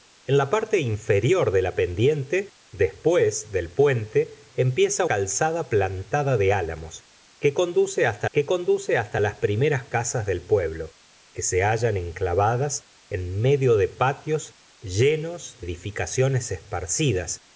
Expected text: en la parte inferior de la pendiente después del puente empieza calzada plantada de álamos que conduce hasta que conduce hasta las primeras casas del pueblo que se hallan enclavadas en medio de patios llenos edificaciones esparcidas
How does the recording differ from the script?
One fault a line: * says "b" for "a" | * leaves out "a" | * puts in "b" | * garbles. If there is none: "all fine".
all fine